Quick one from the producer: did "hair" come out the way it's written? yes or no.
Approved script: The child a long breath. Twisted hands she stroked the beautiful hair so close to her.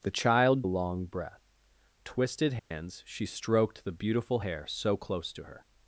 yes